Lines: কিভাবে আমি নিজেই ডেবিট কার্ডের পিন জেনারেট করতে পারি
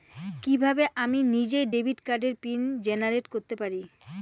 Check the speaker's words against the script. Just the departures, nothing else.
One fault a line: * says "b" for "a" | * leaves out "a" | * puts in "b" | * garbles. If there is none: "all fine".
all fine